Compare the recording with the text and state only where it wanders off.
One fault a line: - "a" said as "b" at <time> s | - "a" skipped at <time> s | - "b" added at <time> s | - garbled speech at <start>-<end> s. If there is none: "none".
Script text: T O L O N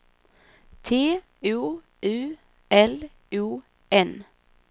- "U" added at 2.0 s